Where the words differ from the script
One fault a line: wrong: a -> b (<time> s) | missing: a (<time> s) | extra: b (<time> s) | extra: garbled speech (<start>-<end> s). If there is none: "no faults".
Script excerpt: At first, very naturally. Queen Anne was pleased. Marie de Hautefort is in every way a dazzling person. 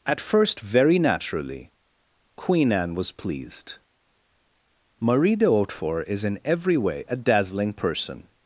no faults